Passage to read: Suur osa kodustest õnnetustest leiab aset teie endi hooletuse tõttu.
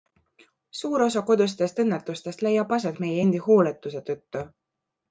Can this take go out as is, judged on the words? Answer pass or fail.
fail